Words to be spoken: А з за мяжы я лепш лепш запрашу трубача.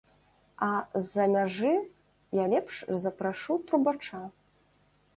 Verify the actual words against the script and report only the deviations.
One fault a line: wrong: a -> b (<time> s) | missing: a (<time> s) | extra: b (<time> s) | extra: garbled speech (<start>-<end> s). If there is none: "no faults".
missing: лепш (2.8 s)